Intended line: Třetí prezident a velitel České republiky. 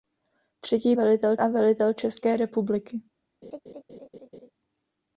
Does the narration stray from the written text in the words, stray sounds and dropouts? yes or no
yes